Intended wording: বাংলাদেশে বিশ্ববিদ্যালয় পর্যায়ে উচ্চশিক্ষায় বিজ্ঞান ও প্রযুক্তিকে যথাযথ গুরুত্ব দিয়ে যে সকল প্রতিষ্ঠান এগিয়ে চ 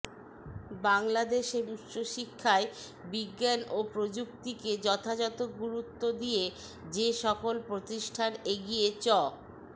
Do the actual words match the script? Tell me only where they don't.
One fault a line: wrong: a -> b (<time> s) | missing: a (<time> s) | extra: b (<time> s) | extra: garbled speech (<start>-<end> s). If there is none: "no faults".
missing: বিশ্ববিদ্যালয় পর্যায়ে (1.6 s)